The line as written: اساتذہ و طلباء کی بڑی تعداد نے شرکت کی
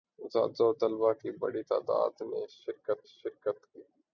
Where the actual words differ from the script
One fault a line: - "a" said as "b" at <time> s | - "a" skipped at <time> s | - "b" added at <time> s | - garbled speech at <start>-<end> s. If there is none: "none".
- "شرکت" added at 3.1 s